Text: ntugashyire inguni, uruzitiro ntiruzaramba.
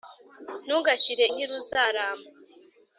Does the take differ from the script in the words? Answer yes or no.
yes